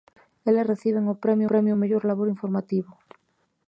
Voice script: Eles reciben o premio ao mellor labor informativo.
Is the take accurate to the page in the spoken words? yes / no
no